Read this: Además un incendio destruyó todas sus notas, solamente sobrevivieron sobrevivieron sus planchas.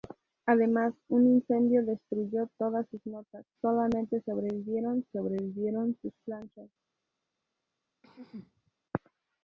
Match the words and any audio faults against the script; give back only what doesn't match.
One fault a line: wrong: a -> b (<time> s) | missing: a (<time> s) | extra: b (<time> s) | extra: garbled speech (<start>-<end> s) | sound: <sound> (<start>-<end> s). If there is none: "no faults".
sound: throat clearing (8.0-8.7 s)